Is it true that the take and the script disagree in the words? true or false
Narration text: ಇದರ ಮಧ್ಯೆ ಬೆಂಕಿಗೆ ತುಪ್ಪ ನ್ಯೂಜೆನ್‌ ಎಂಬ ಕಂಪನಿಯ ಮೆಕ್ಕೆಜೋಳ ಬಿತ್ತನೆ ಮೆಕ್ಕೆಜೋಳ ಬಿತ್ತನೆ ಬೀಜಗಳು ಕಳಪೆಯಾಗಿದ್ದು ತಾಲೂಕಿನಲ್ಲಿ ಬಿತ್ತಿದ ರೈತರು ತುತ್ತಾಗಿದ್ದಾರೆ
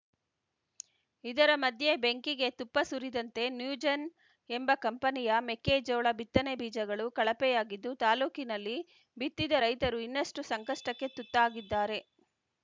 true